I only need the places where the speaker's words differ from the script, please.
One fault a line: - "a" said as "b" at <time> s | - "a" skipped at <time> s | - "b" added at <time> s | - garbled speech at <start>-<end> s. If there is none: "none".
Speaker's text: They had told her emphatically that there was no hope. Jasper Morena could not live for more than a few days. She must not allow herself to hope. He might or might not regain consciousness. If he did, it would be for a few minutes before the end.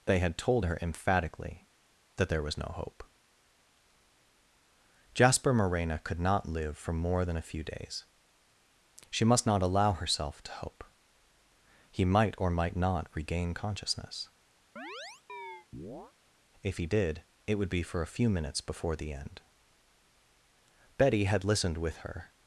- "Betty had listened with her" added at 21.0 s